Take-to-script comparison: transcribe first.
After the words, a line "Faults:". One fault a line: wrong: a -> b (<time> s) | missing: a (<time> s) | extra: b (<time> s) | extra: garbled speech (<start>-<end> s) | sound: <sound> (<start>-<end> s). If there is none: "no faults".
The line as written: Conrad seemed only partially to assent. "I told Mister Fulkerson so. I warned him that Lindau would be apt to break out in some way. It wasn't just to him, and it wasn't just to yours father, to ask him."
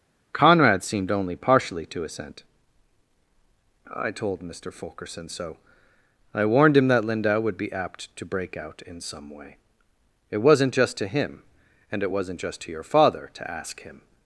Conrad seemed only partially to assent. "I told Mister Fulkerson so. I warned him that Lindau would be apt to break out in some way. It wasn't just to him, and it wasn't just to your father, to ask him."
Faults:
wrong: yours -> your (12.7 s)